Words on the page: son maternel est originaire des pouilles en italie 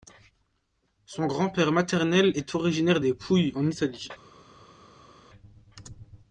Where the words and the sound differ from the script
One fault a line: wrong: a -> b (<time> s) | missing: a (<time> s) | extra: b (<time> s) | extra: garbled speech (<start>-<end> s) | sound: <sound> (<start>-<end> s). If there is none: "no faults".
extra: grand père (1.3 s)